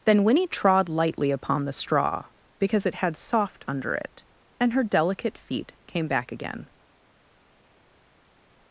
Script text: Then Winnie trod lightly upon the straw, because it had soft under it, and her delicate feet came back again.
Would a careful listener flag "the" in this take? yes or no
no